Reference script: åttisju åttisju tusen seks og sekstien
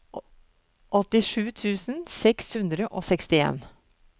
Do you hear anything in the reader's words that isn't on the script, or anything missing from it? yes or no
yes